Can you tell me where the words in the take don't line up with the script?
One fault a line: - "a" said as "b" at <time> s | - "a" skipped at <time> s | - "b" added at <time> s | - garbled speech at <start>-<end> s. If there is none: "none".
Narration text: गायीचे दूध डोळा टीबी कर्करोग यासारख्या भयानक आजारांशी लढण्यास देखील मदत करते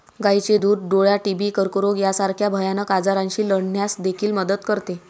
none